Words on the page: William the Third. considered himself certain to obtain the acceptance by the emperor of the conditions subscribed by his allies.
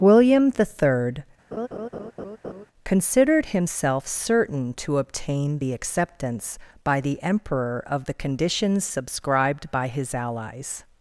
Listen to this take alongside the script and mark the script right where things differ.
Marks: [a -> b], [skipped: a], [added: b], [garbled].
William the Third. considered himself certain to obtain the acceptance by the emperor of the conditions subscribed by his allies.